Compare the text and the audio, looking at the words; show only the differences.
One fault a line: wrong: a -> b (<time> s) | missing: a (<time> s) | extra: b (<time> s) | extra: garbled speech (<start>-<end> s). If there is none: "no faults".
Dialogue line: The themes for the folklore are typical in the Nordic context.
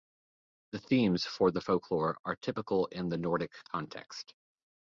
no faults